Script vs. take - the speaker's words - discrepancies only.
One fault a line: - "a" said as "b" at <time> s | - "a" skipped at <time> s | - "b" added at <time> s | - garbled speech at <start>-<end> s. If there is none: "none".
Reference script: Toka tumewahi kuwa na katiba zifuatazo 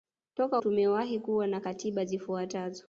none